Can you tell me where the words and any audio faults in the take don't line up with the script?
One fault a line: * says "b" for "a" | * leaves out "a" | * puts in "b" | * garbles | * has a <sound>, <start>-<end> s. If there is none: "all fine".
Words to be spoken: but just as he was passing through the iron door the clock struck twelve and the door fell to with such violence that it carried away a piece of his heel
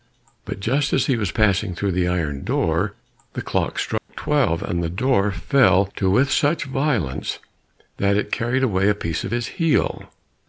* has a dropout, 4.0-4.1 s